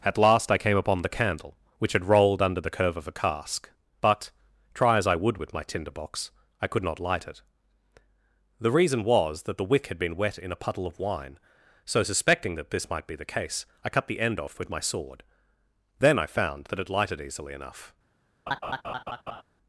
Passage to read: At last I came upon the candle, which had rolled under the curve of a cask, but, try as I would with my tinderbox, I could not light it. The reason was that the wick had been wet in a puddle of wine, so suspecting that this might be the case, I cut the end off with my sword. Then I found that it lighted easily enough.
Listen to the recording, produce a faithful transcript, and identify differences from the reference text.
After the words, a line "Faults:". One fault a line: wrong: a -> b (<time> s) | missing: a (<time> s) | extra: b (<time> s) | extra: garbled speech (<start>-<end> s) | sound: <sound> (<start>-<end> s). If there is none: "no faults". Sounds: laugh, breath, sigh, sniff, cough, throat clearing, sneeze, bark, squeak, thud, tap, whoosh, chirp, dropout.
At last I came upon the candle, which had rolled under the curve of a cask, but, try as I would with my tinderbox, I could not light it. The reason was that the wick had been wet in a puddle of wine, so suspecting that this might be the case, I cut the end off with my sword. Then I found that it lighted easily enough.
Faults:
sound: laugh (18.5-19.4 s)